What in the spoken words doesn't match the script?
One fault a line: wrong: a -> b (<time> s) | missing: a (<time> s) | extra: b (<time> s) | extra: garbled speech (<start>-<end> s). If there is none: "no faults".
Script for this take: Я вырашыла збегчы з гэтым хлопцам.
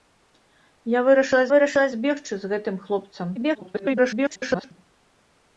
extra: вырашыла (1.5 s)
extra: garbled speech (3.4-4.7 s)